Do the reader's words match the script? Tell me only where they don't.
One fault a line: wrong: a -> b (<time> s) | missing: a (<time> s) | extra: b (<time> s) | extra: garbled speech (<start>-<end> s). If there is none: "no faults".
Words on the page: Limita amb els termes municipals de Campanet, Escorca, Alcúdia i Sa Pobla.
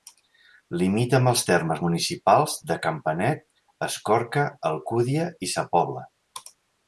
no faults